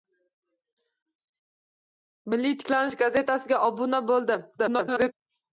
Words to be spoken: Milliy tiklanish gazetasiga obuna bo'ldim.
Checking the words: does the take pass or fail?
fail